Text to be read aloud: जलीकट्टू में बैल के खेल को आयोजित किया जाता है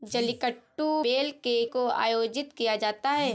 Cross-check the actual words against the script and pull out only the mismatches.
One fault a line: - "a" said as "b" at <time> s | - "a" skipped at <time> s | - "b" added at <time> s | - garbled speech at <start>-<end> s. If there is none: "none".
- "में" skipped at 1.0 s
- "खेल" skipped at 1.6 s